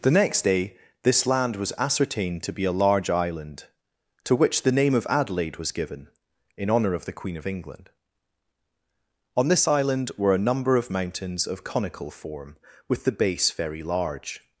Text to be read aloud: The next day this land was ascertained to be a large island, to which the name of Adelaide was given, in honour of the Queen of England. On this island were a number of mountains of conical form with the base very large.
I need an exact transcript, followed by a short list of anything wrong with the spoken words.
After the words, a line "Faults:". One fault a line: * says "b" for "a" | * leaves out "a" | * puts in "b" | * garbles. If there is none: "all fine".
The next day this land was ascertained to be a large island, to which the name of Adelaide was given, in honour of the Queen of England. On this island were a number of mountains of conical form with the base very large.
Faults:
all fine